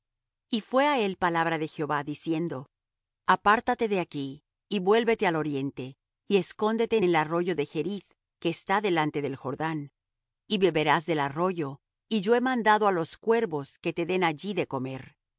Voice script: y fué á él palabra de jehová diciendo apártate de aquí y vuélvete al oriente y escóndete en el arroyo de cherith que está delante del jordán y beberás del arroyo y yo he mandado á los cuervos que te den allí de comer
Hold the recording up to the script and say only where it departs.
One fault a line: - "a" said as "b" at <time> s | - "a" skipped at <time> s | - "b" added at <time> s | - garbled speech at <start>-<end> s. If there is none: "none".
none